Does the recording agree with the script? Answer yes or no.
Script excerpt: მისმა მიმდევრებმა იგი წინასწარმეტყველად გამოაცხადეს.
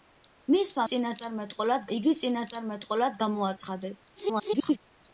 no